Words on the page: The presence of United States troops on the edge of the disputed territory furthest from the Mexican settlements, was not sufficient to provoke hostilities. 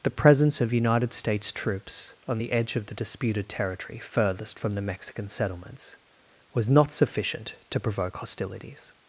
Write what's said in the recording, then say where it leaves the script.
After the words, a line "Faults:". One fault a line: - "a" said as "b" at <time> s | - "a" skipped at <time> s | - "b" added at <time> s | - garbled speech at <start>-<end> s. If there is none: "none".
The presence of United States troops on the edge of the disputed territory furthest from the Mexican settlements, was not sufficient to provoke hostilities.
Faults:
none